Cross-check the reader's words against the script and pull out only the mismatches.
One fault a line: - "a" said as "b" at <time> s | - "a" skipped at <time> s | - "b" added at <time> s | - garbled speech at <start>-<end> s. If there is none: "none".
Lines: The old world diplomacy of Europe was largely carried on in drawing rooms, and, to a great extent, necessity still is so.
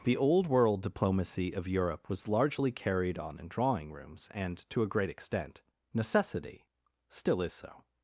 none